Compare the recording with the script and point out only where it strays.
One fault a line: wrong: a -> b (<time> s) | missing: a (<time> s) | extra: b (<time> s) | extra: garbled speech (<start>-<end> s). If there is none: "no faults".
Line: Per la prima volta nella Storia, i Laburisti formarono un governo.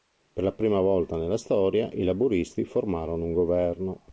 no faults